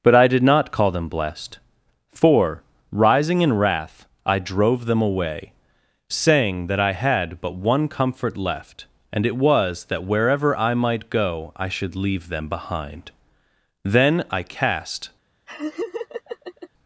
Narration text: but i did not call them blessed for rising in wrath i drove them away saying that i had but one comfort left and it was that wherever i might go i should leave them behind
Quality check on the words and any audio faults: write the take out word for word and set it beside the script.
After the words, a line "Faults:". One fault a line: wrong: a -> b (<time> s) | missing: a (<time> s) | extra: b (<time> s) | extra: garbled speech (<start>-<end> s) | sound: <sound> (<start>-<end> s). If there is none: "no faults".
but i did not call them blessed for rising in wrath i drove them away saying that i had but one comfort left and it was that wherever i might go i should leave them behind then i cast
Faults:
extra: then i cast (13.8 s)
sound: laugh (15.5-16.7 s)